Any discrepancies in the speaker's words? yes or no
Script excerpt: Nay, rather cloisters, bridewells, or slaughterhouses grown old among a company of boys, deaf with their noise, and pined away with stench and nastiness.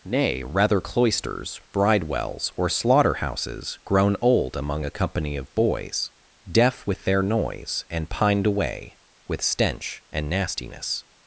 no